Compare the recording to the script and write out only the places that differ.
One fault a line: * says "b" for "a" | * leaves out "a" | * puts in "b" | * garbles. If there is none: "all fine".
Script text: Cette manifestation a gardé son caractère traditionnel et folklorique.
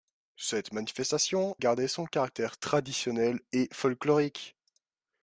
* leaves out "a"